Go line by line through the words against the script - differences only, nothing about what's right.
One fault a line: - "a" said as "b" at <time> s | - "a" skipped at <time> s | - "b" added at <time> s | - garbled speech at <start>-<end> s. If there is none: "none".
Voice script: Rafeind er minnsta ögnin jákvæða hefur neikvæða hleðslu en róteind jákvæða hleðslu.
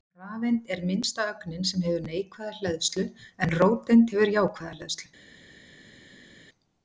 - "jákvæða" said as "sem" at 1.7 s
- "hefur" added at 4.2 s